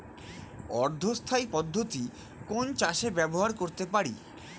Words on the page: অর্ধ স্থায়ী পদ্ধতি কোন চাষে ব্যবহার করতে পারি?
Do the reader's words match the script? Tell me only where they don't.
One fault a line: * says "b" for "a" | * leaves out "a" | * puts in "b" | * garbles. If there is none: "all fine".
all fine